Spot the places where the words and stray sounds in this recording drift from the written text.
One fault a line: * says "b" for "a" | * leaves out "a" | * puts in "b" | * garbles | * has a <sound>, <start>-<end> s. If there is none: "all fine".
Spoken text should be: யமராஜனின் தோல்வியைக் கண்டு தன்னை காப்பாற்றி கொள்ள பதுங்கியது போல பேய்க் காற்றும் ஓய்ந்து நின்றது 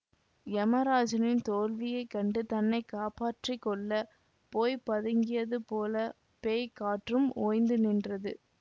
* puts in "போய்"